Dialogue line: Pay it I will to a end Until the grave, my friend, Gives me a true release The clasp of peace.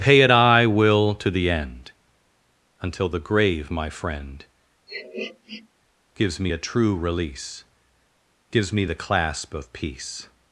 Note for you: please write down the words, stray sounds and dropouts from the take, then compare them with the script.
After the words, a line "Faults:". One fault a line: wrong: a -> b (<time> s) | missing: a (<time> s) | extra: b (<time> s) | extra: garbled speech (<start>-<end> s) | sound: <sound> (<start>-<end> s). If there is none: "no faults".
Pay it I will to the end Until the grave, my friend, Gives me a true release Gives me the clasp of peace.
Faults:
wrong: a -> the (1.3 s)
sound: sniff (4.9-5.7 s)
extra: Gives me (8.5 s)